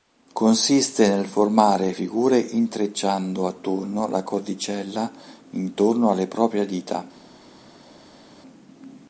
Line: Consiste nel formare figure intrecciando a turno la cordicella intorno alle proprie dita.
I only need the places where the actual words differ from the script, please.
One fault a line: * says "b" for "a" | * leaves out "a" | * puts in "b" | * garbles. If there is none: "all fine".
all fine